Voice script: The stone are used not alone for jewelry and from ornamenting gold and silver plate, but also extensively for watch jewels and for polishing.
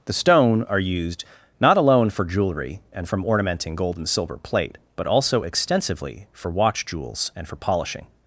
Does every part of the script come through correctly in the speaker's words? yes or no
yes